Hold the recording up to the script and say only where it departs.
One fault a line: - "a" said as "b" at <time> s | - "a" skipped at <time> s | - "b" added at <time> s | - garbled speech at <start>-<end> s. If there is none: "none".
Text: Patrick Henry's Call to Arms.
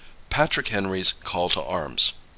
none